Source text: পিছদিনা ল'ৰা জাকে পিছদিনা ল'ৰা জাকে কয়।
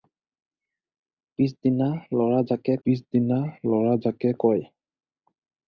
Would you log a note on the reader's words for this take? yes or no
no